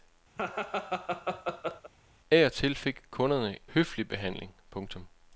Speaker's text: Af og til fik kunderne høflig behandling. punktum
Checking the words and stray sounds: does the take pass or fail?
fail